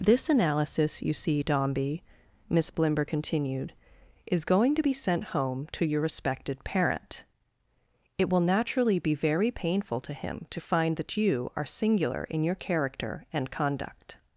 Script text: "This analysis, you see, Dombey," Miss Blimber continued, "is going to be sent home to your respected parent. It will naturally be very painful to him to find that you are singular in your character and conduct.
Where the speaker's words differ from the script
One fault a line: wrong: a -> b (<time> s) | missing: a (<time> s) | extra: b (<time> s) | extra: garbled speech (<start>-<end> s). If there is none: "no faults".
no faults